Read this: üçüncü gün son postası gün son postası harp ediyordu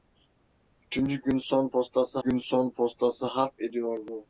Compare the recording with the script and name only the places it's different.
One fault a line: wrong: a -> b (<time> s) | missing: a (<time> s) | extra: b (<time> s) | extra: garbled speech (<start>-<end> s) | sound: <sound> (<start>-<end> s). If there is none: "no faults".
no faults